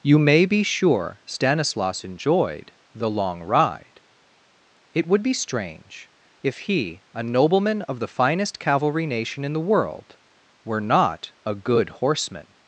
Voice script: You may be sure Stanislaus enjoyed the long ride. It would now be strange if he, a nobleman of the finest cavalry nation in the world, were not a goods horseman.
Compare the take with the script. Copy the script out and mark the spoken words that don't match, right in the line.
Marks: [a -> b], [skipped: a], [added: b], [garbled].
You may be sure Stanislaus enjoyed the long ride. It would [skipped: now] be strange if he, a nobleman of the finest cavalry nation in the world, were not a [goods -> good] horseman.